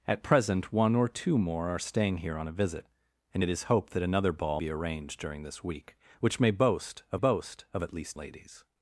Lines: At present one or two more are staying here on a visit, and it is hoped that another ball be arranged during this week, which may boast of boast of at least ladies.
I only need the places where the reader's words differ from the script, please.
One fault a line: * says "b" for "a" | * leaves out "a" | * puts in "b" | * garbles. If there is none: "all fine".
all fine